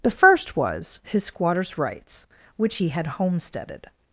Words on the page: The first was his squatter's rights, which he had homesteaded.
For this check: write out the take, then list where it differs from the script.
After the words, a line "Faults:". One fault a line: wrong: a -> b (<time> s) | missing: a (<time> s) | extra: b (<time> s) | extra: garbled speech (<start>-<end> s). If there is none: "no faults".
The first was his squatter's rights, which he had homesteaded.
Faults:
no faults